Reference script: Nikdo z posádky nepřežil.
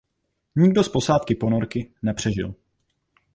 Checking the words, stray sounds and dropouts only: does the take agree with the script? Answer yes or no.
no